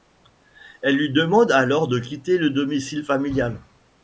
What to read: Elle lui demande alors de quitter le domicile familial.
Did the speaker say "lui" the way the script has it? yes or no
yes